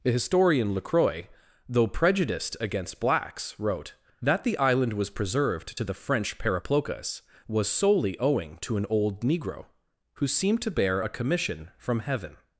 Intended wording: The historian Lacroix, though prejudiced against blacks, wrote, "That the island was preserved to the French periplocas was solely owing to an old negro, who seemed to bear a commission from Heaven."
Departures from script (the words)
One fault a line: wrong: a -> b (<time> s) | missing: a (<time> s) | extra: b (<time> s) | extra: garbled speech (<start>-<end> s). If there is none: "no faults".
no faults